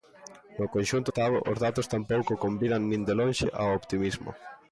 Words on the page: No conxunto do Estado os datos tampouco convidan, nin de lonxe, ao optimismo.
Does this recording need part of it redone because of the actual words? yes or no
yes